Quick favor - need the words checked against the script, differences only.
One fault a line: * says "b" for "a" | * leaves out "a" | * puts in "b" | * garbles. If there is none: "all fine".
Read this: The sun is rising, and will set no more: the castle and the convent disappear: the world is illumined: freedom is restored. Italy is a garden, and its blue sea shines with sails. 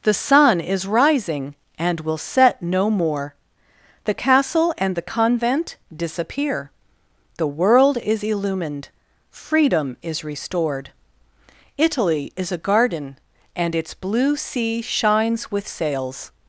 all fine